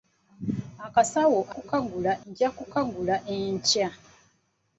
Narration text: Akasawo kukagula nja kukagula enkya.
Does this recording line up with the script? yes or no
yes